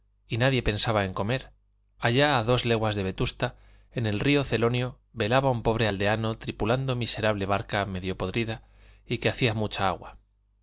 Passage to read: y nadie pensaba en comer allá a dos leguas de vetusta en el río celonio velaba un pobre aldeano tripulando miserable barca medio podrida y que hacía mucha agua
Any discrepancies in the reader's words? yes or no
no